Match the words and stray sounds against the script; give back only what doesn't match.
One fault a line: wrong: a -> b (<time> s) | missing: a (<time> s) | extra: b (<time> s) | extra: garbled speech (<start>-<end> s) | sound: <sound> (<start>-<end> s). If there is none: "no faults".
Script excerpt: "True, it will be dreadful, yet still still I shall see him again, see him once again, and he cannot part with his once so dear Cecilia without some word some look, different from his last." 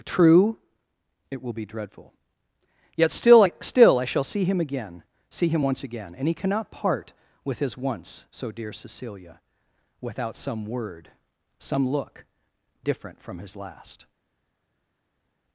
extra: I (3.4 s)